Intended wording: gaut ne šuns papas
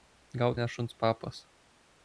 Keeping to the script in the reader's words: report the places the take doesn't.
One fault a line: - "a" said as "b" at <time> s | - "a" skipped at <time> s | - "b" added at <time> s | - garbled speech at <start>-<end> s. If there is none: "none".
none